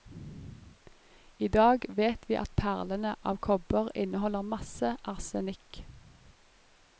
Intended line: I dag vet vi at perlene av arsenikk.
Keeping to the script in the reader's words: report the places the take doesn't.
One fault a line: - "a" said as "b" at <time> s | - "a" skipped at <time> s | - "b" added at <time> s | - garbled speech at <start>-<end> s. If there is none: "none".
- "kobber inneholder masse" added at 3.5 s